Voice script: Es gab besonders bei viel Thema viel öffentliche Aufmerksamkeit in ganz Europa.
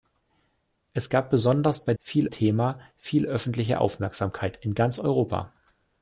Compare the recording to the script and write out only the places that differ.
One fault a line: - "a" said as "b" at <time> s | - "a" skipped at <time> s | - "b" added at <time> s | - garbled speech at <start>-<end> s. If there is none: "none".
none